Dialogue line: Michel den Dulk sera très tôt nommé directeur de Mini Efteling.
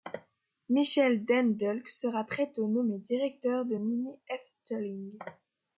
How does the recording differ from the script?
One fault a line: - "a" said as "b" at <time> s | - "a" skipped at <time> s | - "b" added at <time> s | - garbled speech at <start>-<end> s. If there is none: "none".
none